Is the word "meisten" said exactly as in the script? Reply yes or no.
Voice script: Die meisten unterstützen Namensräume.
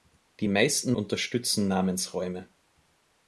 yes